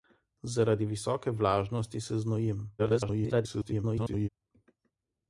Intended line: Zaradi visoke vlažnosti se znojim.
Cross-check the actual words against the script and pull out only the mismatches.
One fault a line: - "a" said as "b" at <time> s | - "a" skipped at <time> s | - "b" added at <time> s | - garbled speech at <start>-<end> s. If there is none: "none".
- garbled speech at 2.8-4.3 s